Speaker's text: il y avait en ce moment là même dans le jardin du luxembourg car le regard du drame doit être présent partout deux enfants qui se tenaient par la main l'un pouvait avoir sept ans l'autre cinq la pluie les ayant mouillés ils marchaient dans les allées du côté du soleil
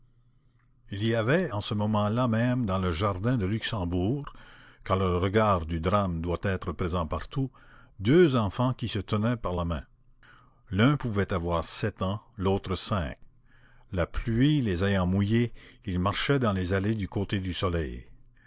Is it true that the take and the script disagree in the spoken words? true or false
false